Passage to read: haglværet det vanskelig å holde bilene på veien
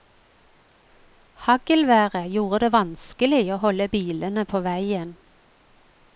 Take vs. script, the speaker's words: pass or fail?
fail